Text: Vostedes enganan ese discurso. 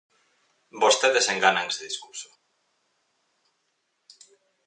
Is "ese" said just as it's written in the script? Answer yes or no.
yes